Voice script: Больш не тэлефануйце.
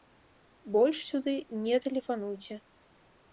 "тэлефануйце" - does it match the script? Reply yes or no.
yes